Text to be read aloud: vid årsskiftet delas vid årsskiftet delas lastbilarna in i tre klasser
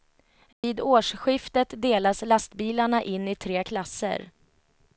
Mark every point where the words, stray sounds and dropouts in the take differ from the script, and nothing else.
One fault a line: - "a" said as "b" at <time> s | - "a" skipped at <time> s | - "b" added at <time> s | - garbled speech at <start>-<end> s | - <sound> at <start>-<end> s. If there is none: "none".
- dropout at 0.5-0.6 s
- "vid årsskiftet delas" skipped at 2.2 s